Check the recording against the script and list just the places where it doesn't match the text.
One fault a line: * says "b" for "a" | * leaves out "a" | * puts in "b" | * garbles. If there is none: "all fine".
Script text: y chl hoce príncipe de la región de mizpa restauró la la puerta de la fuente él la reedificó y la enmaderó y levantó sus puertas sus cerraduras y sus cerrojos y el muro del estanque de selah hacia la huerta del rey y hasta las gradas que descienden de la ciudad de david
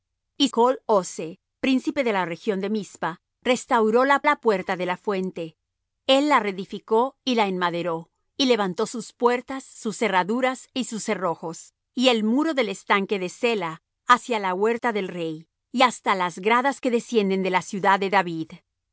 all fine